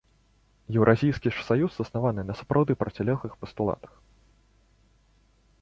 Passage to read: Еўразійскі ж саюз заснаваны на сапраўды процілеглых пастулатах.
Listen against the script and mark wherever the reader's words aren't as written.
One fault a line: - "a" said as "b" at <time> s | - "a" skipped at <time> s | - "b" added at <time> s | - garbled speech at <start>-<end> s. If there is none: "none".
none